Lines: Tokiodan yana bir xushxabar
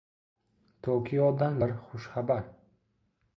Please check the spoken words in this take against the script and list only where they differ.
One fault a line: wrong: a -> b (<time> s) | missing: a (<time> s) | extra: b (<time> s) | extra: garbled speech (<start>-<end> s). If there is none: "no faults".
missing: yana (1.6 s)